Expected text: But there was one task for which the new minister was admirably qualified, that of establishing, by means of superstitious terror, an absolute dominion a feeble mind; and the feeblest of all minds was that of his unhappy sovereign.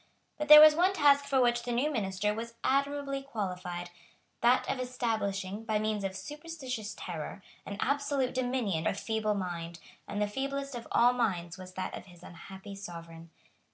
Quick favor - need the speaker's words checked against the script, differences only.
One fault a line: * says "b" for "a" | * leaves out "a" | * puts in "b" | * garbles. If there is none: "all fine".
all fine